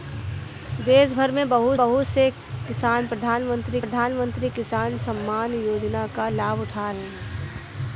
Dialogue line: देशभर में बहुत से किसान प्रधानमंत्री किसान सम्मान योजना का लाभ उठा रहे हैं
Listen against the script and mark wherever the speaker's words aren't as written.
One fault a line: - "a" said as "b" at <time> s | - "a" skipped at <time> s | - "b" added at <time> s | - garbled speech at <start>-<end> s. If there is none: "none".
- "बहुत" added at 1.8 s
- "प्रधानमंत्री" added at 3.8 s
- "रहे" skipped at 6.9 s